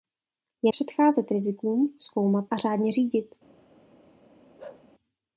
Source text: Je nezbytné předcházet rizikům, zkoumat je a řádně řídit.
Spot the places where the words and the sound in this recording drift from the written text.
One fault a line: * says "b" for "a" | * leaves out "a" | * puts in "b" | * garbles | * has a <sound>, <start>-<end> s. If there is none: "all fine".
* leaves out "nezbytné"
* leaves out "je"
* has a bark, 4.6-4.9 s